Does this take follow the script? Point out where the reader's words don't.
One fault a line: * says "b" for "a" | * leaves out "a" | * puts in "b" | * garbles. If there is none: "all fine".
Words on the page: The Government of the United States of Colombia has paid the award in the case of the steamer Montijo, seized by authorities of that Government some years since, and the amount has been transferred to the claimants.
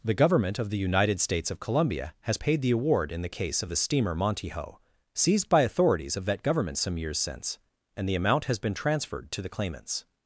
all fine